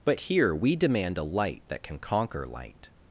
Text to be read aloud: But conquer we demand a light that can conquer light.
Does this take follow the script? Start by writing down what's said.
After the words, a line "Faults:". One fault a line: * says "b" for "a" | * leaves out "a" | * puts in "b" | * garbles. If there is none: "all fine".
But here we demand a light that can conquer light.
Faults:
* says "here" for "conquer"